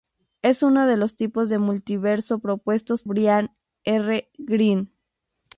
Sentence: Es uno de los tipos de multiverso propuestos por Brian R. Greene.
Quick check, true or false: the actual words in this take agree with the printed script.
false